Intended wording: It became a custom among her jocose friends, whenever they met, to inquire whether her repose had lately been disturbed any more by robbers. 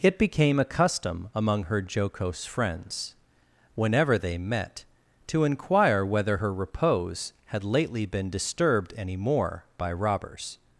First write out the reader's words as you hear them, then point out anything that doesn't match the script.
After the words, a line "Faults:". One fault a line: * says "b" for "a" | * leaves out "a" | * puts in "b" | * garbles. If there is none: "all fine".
It became a custom among her jocose friends, whenever they met, to inquire whether her repose had lately been disturbed any more by robbers.
Faults:
all fine